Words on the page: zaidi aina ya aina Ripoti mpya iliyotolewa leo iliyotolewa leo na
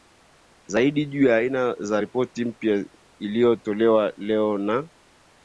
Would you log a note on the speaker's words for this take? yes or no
yes